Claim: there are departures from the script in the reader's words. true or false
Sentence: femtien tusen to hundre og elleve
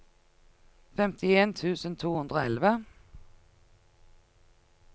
false